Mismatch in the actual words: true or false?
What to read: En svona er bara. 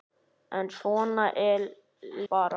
false